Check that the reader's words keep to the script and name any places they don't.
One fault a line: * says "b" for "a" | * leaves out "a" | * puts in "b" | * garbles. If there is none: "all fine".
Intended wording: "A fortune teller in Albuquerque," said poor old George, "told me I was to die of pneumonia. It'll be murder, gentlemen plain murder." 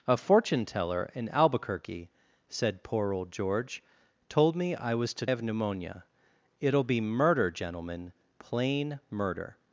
* leaves out "die"